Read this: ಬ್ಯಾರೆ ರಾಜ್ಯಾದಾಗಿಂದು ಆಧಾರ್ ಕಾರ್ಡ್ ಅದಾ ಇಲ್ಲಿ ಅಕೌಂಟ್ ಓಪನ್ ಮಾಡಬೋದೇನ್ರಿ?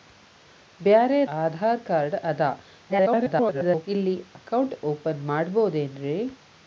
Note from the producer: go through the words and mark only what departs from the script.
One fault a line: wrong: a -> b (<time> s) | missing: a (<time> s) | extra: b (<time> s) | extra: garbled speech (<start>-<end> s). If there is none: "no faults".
missing: ರಾಜ್ಯಾದಾಗಿಂದು (1.2 s)
extra: garbled speech (2.9-3.9 s)